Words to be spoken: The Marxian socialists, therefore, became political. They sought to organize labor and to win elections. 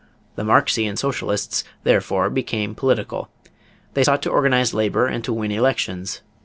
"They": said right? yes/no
yes